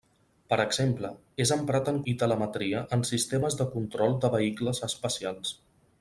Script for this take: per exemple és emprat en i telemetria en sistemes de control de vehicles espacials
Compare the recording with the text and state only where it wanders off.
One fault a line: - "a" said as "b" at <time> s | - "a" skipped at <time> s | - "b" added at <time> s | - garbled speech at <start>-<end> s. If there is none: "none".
none